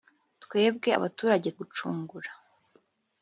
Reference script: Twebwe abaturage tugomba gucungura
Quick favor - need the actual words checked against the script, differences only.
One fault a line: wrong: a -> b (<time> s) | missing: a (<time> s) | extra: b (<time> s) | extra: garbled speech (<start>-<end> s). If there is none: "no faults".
missing: tugomba (1.5 s)